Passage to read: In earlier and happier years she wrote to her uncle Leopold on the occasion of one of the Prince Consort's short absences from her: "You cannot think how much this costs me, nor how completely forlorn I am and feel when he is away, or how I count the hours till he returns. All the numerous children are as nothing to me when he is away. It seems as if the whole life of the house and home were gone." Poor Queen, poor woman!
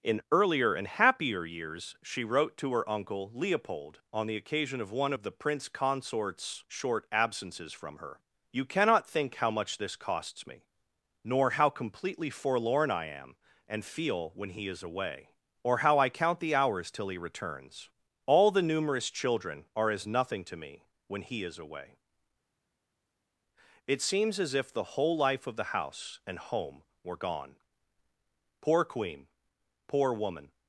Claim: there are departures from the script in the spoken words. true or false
false